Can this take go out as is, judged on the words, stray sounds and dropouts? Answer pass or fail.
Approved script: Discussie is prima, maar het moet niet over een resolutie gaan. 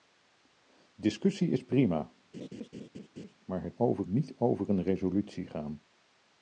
fail